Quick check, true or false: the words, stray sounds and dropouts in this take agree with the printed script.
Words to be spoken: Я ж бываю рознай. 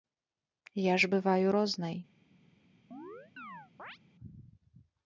false